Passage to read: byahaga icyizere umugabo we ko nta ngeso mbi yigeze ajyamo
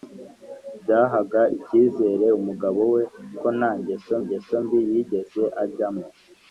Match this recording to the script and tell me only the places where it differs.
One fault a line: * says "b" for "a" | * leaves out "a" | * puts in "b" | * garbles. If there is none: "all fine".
* puts in "ngeso"